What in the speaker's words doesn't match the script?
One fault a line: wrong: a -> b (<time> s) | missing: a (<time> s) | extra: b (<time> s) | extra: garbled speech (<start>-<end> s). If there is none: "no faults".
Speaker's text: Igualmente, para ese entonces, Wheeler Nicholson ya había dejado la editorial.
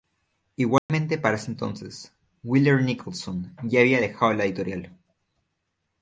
no faults